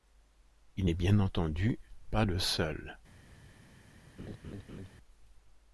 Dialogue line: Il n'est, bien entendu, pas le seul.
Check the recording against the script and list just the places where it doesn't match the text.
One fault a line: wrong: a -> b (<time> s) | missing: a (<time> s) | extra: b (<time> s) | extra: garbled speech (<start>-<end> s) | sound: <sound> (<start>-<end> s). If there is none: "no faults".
sound: laugh (4.2-4.9 s)